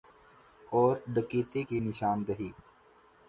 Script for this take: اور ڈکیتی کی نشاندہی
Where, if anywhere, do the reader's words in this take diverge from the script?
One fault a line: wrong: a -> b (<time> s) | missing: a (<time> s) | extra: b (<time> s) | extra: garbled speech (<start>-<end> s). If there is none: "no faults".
no faults